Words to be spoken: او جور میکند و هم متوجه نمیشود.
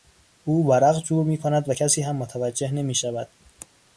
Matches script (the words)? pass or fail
fail